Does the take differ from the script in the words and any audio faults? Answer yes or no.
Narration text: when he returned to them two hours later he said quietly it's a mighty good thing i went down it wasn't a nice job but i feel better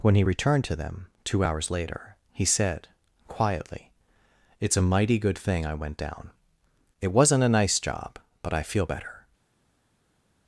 no